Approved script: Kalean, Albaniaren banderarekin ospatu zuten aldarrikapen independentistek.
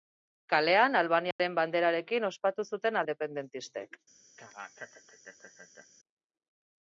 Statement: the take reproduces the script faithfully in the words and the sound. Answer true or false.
false